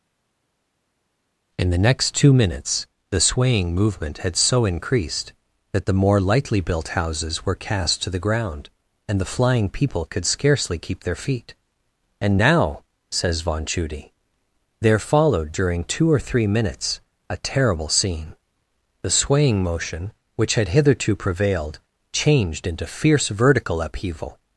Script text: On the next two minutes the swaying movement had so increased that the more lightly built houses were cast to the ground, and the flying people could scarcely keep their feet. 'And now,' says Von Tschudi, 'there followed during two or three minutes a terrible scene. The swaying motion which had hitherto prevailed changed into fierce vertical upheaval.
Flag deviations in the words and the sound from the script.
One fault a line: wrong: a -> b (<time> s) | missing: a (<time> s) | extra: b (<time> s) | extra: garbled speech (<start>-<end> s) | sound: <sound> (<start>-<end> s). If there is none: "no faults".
wrong: On -> In (1.6 s)